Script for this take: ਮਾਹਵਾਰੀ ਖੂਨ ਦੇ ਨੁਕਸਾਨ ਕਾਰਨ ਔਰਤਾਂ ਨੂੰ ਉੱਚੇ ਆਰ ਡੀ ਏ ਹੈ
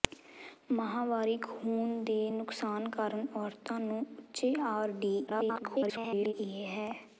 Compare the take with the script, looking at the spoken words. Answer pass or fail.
fail